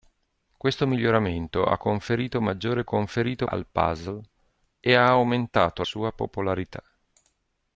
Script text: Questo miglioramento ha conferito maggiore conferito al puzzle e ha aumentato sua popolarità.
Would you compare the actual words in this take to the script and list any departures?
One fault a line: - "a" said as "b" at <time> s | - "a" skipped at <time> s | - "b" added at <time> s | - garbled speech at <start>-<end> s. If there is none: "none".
none